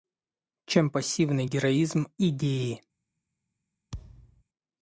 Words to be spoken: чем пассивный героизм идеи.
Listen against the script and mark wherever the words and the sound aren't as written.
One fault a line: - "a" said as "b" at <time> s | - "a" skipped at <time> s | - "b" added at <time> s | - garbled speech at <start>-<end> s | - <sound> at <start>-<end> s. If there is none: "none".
- thud at 3.9-4.4 s